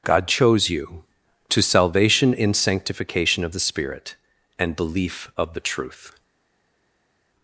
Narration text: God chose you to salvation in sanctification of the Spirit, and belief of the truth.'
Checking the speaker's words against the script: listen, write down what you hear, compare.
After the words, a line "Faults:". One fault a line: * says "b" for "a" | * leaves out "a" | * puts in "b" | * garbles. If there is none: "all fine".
God chose you to salvation in sanctification of the Spirit, and belief of the truth.'
Faults:
all fine